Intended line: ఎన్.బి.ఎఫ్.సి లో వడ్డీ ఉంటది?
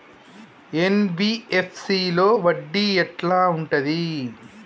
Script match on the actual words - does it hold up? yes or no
no